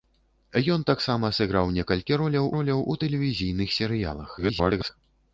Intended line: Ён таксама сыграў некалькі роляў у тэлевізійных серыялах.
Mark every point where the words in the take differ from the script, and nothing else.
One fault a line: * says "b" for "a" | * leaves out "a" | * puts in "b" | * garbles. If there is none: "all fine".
* puts in "роляў"
* garbles